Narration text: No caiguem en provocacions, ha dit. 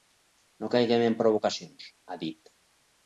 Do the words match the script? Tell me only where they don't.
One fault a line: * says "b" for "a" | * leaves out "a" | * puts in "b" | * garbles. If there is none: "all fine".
all fine